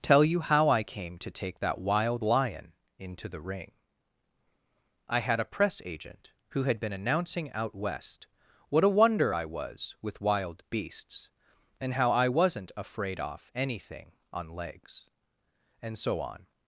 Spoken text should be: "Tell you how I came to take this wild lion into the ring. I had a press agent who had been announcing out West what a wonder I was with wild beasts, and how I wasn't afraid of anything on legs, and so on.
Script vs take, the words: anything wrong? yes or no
yes